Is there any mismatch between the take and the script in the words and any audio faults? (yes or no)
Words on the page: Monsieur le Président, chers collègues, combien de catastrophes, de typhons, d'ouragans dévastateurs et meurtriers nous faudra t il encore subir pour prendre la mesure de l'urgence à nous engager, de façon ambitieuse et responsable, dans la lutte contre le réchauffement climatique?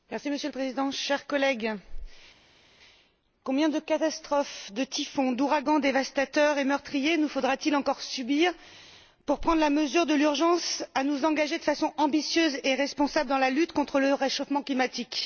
no